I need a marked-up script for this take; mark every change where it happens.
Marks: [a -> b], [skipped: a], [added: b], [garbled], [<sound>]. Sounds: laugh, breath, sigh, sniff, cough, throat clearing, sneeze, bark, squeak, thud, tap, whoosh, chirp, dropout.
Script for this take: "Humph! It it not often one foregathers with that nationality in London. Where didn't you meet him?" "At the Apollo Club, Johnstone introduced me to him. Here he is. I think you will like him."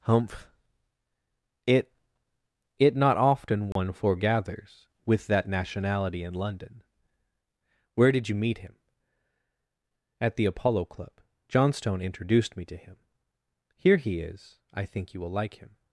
"Humph! It it not often one [dropout] foregathers with that nationality in London. Where [didn't -> did] you meet him?" "At the Apollo Club, Johnstone introduced me to him. Here he is. I think you will like him."